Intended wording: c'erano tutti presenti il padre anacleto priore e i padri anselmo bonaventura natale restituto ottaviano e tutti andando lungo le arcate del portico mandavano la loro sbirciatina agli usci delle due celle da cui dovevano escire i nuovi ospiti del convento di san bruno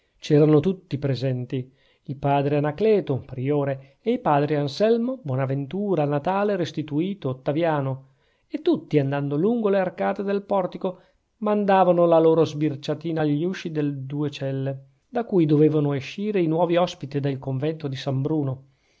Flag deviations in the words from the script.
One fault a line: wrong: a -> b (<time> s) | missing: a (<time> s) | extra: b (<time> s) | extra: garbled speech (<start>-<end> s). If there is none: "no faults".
no faults